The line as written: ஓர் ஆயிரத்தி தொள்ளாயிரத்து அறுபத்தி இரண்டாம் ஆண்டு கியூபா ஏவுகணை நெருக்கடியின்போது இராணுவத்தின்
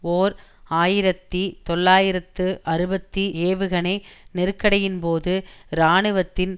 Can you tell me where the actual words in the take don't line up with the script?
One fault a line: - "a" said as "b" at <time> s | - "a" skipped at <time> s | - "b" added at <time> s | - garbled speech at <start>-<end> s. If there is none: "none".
- "இரண்டாம் ஆண்டு கியூபா" skipped at 3.2 s